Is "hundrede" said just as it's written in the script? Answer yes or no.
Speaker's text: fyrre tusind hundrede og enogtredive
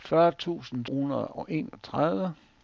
yes